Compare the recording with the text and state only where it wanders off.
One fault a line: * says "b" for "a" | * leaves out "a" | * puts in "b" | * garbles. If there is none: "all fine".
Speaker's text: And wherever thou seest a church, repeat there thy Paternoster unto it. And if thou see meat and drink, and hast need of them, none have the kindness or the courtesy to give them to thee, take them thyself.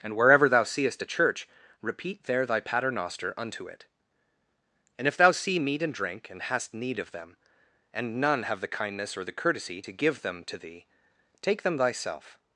* puts in "and"